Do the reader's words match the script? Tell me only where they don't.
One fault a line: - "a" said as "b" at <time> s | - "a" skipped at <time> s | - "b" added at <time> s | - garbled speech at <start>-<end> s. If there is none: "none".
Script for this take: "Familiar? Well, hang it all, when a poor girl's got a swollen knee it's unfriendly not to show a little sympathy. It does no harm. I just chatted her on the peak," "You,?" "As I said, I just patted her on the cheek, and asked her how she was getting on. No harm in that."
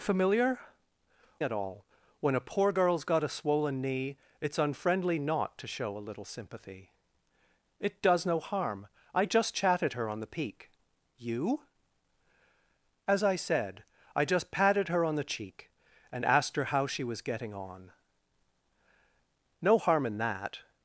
- "Well hang" skipped at 0.6 s